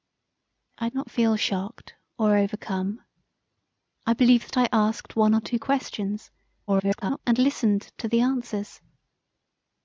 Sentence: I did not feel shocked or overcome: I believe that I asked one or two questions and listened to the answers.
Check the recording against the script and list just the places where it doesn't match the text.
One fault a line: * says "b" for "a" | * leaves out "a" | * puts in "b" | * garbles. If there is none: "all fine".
* leaves out "did"
* garbles